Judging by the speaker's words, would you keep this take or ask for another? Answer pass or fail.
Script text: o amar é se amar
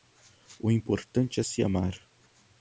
fail